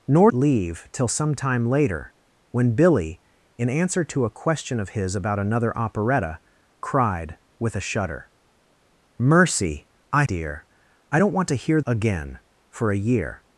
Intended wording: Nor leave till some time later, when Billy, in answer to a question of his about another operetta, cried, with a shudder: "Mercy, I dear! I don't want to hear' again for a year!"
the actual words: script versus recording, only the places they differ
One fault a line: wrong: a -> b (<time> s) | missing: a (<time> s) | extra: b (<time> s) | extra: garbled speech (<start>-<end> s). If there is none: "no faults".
no faults